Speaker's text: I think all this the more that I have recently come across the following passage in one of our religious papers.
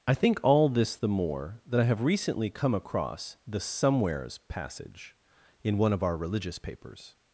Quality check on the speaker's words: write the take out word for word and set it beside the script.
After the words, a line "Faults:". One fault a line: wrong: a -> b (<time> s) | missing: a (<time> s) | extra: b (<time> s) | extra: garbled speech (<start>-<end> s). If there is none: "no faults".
I think all this the more that I have recently come across the somewheres passage in one of our religious papers.
Faults:
wrong: following -> somewheres (3.6 s)